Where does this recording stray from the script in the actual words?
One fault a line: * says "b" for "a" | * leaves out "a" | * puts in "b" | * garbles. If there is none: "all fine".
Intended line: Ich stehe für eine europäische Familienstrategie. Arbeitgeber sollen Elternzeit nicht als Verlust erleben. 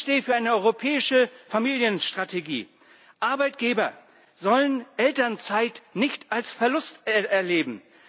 all fine